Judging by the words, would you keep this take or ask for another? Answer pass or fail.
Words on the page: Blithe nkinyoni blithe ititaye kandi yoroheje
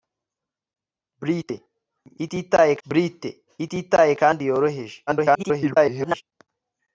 fail